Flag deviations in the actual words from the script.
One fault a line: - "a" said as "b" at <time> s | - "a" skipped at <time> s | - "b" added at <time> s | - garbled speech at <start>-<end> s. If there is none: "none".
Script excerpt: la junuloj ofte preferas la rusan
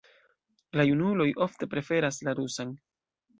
none